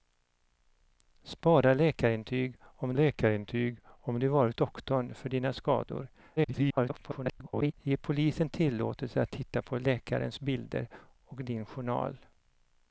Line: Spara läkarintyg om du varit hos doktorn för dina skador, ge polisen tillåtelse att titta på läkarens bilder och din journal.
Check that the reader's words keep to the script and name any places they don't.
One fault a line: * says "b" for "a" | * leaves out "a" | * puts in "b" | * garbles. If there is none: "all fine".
* puts in "läkarintyg om"
* leaves out "hos"
* garbles